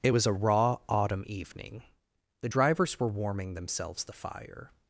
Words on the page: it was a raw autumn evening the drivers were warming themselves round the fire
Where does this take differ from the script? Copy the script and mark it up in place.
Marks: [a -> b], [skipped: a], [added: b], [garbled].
it was a raw autumn evening the drivers were warming themselves [skipped: round] the fire